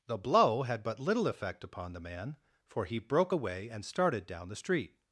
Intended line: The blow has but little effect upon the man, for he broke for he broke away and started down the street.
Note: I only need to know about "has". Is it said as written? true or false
false